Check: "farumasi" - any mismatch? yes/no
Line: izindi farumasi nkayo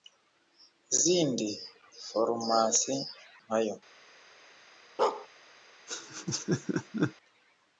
no